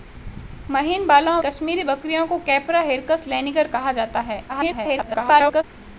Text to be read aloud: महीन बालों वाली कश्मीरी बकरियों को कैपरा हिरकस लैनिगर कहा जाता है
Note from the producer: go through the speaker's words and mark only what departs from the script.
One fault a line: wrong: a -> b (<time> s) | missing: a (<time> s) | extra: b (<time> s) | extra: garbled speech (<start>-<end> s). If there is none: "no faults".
missing: वाली (1.4 s)
extra: garbled speech (4.5-5.6 s)